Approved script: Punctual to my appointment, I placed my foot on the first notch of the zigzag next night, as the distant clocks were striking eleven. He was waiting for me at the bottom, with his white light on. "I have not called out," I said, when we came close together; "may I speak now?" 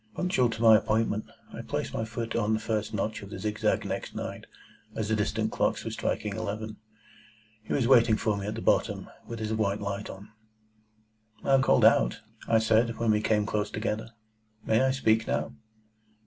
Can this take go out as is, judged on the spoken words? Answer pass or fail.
fail